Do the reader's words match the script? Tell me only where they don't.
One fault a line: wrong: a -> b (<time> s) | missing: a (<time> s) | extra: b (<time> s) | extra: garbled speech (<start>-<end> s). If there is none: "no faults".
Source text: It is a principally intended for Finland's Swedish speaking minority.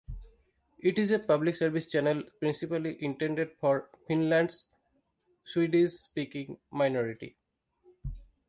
extra: public service channel (1.2 s)